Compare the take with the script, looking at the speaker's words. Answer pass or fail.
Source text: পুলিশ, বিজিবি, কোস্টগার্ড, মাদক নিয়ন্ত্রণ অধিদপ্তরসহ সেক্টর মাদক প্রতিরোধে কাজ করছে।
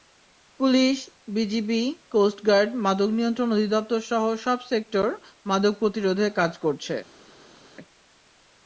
fail